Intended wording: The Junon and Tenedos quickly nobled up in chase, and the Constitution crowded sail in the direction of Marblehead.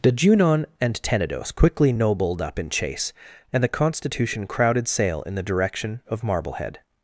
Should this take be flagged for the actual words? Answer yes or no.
no